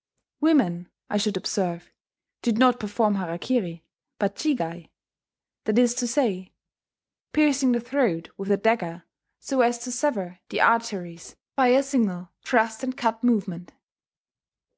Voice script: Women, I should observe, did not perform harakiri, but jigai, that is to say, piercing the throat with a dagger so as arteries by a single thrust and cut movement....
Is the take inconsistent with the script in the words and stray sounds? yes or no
yes